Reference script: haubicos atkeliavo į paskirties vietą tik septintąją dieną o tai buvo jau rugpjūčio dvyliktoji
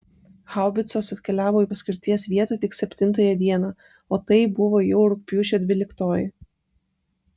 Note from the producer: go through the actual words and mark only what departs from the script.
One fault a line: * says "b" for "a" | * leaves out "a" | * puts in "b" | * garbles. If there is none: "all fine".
all fine